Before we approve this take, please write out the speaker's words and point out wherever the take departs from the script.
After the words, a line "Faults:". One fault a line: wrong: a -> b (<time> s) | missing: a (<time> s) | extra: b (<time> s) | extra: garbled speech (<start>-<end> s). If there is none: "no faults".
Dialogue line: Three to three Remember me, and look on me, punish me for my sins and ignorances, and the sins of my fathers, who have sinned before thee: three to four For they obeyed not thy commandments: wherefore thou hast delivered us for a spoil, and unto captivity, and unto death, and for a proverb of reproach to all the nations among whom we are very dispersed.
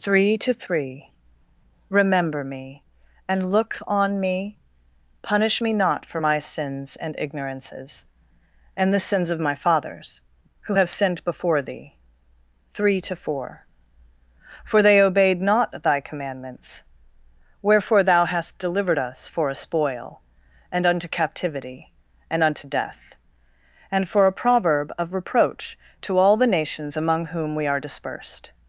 Three to three Remember me, and look on me, punish me not for my sins and ignorances, and the sins of my fathers, who have sinned before thee: three to four For they obeyed not thy commandments: wherefore thou hast delivered us for a spoil, and unto captivity, and unto death, and for a proverb of reproach to all the nations among whom we are dispersed.
Faults:
extra: not (5.7 s)
missing: very (27.8 s)